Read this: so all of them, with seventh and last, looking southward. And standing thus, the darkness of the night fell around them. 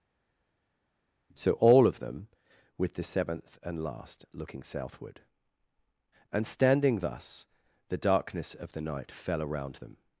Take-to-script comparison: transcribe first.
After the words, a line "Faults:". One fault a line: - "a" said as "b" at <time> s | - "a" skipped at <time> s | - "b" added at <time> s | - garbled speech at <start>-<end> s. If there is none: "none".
so all of them, with the seventh and last, looking southward. And standing thus, the darkness of the night fell around them.
Faults:
- "the" added at 2.9 s